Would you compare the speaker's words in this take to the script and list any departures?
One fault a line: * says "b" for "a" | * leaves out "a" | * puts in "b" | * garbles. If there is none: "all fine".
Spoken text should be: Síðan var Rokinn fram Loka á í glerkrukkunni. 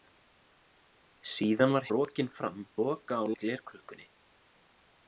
all fine